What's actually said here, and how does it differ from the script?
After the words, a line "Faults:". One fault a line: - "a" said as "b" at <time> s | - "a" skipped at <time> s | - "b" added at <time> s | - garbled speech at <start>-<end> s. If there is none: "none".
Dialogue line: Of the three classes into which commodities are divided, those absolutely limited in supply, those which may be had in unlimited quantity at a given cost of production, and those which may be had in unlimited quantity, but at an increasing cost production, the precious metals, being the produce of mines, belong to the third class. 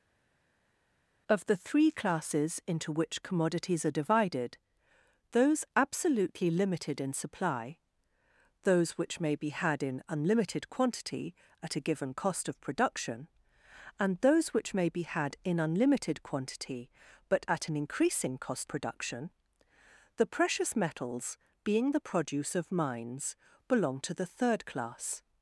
Of the three classes into which commodities are divided, those absolutely limited in supply, those which may be had in unlimited quantity at a given cost of production, and those which may be had in unlimited quantity, but at an increasing cost production, the precious metals, being the produce of mines, belong to the third class.
Faults:
none